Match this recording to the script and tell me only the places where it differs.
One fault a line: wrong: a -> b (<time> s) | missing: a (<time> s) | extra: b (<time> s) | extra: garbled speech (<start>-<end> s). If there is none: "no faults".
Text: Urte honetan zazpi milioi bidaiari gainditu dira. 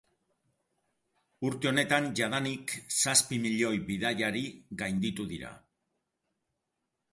extra: jadanik (2.2 s)